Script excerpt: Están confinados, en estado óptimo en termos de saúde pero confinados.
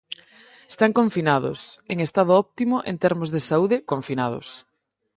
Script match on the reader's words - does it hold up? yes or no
no